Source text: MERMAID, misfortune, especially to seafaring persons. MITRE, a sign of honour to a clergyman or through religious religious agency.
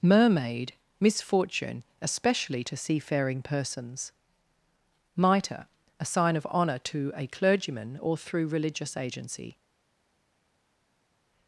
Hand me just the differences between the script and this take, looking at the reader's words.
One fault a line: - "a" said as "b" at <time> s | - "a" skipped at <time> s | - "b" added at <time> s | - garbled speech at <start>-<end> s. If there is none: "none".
- "religious" skipped at 8.9 s